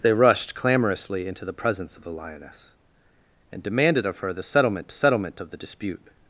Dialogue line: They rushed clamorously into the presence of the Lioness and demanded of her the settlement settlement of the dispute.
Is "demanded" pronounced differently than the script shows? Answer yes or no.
no